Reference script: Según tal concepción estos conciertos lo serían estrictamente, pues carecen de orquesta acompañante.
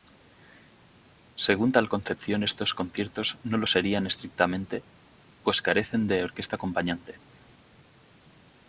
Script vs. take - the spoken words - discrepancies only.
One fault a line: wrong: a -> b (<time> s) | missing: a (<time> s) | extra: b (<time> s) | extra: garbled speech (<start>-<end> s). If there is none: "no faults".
extra: no (3.4 s)